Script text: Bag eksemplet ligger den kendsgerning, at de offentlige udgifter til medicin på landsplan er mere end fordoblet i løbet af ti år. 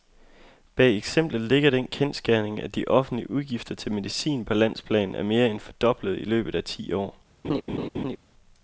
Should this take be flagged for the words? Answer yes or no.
no